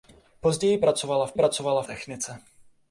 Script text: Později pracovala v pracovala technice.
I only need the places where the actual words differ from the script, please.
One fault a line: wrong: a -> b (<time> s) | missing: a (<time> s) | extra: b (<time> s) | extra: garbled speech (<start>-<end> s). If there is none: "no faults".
no faults